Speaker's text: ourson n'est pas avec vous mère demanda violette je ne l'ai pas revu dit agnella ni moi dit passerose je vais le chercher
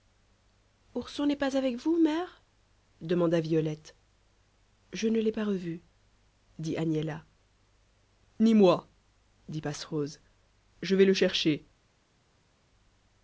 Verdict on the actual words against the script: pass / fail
pass